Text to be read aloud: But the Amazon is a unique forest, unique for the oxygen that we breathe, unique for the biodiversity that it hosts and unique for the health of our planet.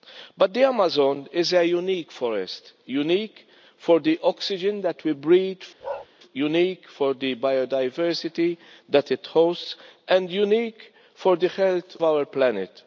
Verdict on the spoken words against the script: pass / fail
fail